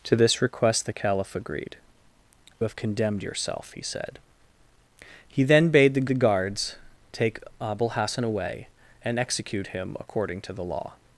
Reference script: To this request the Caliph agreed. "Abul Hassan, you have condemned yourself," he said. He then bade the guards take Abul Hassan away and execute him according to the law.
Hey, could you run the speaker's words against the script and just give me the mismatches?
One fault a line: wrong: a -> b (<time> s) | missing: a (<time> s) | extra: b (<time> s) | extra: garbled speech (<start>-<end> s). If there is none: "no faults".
missing: Abul Hassan you (1.8 s)
extra: the (6.1 s)